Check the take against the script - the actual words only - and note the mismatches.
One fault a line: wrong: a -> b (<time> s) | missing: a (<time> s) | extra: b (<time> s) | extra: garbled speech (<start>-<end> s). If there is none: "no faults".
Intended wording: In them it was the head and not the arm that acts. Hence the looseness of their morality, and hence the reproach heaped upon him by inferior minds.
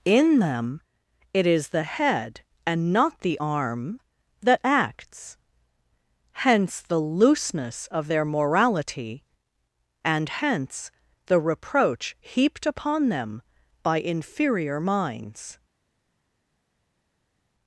wrong: was -> is (1.5 s)
wrong: him -> them (13.1 s)